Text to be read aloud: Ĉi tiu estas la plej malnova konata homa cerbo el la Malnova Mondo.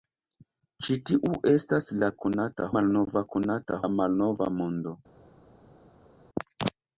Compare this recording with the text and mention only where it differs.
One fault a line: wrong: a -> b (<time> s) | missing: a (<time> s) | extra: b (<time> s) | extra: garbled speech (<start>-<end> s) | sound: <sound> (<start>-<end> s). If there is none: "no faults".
wrong: plej -> konata (2.3 s)
missing: homa cerbo el (3.8 s)